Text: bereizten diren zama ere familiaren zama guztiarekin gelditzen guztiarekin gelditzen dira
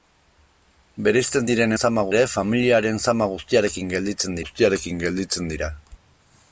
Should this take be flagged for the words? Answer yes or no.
no